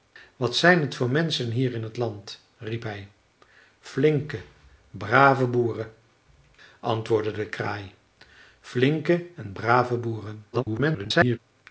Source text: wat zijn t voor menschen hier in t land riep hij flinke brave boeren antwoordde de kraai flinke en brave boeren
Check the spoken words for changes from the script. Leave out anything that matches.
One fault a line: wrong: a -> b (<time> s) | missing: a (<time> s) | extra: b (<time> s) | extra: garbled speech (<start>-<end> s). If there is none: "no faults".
extra: garbled speech (10.5-11.4 s)